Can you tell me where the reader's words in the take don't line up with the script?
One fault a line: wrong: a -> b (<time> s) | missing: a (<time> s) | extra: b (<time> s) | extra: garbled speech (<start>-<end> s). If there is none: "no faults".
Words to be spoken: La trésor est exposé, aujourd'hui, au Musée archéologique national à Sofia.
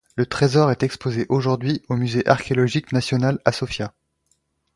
wrong: La -> Le (0.1 s)